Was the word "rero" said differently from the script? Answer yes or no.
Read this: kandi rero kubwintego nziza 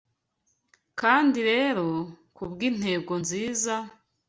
no